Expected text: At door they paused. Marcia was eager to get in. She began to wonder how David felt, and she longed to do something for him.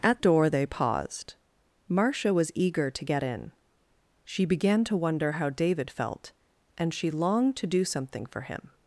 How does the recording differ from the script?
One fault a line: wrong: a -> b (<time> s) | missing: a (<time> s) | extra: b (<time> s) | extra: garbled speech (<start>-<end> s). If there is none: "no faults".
no faults